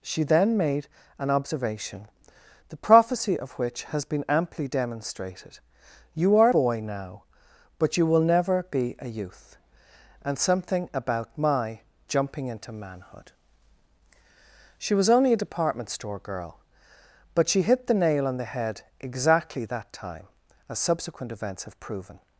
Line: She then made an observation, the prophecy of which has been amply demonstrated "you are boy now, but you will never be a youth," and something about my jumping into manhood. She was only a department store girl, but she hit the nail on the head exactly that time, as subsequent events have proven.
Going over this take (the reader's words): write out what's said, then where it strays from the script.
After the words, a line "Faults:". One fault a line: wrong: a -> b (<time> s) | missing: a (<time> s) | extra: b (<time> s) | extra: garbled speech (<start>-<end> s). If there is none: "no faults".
She then made an observation, the prophecy of which has been amply demonstrated "you are boy now, but you will never be a youth," and something about my jumping into manhood. She was only a department store girl, but she hit the nail on the head exactly that time, as subsequent events have proven.
Faults:
no faults